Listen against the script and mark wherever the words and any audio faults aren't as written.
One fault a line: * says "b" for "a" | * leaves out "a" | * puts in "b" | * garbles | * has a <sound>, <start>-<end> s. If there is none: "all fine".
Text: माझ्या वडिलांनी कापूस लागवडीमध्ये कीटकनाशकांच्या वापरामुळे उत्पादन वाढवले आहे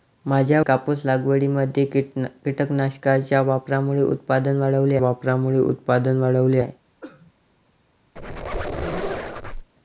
* leaves out "वडिलांनी"
* puts in "वापरामुळे उत्पादन वाढवले"
* has a cough, 7.0-7.3 s
* has a squeak, 8.2-9.7 s